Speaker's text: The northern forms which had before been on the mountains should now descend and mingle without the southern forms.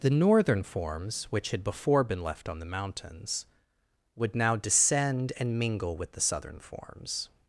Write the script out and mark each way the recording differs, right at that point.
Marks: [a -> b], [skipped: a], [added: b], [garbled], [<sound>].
The northern forms which had before been [added: left] on the mountains [should -> would] now descend and mingle [without -> with] the southern forms.